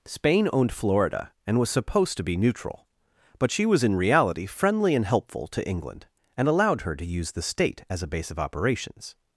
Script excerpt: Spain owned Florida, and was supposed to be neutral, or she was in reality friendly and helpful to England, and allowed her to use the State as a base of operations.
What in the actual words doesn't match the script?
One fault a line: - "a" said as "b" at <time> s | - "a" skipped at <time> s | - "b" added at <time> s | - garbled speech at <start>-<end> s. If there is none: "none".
- "or" said as "but" at 3.4 s